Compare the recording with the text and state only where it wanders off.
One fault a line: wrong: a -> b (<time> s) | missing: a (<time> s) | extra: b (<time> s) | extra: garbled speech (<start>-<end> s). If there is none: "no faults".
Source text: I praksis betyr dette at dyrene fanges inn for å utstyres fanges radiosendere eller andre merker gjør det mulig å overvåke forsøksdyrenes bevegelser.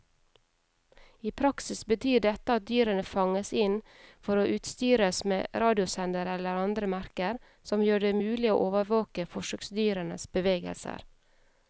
wrong: fanges -> med (5.3 s)
extra: som (7.7 s)